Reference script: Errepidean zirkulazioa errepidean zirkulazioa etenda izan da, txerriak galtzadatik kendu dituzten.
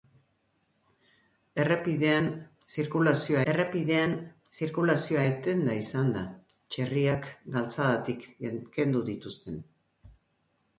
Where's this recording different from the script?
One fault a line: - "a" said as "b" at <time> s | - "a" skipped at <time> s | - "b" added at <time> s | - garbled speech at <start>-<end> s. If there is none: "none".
none